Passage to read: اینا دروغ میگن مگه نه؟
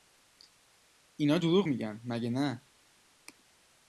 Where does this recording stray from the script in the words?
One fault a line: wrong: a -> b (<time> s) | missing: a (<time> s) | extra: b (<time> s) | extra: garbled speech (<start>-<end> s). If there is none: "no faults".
no faults